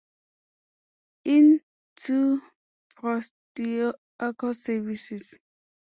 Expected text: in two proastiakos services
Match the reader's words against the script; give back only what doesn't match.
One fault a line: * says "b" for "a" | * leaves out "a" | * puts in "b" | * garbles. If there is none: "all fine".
all fine